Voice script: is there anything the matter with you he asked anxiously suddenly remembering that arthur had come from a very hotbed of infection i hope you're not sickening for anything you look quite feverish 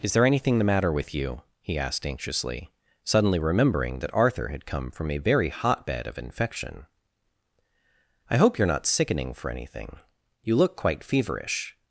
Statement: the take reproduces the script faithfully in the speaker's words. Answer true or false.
true